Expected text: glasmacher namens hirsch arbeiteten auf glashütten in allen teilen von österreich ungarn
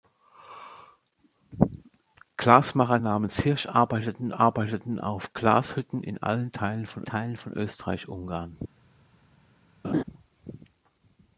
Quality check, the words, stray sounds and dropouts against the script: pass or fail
fail